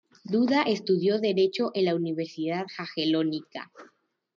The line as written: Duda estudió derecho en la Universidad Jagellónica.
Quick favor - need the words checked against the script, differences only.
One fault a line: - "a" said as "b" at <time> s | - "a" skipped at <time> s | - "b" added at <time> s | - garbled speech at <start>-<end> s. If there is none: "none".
none